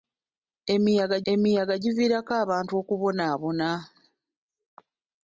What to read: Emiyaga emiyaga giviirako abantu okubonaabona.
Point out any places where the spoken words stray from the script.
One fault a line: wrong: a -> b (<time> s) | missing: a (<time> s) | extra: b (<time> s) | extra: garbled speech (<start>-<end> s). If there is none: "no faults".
no faults